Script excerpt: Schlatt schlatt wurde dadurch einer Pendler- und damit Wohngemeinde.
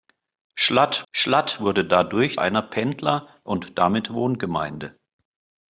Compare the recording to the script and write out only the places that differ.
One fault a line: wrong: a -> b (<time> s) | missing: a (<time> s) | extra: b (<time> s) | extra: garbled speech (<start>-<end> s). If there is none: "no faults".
no faults